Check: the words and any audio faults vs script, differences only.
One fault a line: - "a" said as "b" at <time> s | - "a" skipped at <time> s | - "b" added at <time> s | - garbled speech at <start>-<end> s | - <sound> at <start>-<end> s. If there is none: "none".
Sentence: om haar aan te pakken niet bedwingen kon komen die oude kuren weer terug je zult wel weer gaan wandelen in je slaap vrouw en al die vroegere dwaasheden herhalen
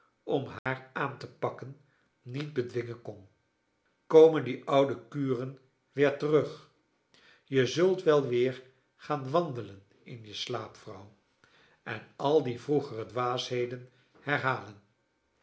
- dropout at 0.6-0.7 s